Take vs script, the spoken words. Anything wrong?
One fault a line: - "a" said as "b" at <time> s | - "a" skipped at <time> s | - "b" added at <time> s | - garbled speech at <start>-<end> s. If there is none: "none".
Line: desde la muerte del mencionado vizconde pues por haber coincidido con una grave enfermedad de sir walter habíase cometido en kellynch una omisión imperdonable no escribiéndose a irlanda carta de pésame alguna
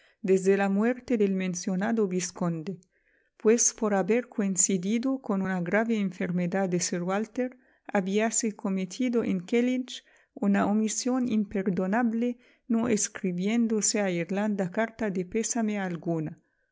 none